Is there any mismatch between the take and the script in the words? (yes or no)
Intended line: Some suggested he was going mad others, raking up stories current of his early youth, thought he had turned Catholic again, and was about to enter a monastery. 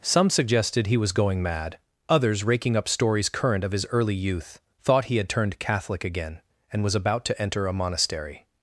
no